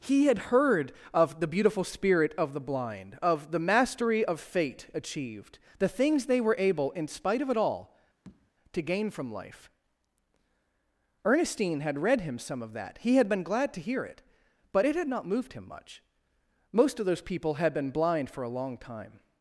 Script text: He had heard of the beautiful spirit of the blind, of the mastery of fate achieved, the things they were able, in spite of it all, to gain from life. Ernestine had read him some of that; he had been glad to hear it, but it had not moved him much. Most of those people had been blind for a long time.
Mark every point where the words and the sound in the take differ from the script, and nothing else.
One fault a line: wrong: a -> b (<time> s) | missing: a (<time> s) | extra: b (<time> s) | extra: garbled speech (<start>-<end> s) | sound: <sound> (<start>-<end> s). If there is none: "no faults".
sound: tap (8.2-8.5 s)